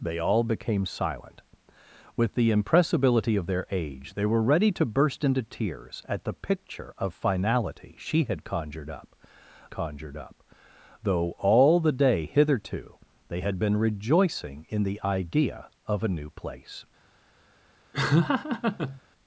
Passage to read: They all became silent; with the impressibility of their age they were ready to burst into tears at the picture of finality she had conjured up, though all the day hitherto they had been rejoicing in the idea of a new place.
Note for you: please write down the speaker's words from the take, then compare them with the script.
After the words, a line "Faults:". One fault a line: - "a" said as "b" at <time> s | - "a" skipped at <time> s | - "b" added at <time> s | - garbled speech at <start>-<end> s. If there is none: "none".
They all became silent; with the impressibility of their age they were ready to burst into tears at the picture of finality she had conjured up conjured up, though all the day hitherto they had been rejoicing in the idea of a new place.
Faults:
- "conjured up" added at 9.7 s